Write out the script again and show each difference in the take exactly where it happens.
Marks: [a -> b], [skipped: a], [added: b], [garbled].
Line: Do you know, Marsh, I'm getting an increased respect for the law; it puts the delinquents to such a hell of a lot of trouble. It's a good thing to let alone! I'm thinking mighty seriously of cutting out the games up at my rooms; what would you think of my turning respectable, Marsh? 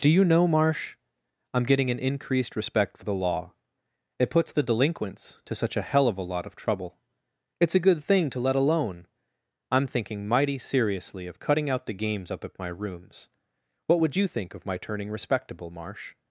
Do you know, Marsh, I'm getting an increased respect for the law; it puts the delinquents to such a hell of a lot of trouble. It's a good thing to let alone! I'm thinking mighty seriously of cutting out the games up at my rooms; what would you think of my turning respectable, Marsh?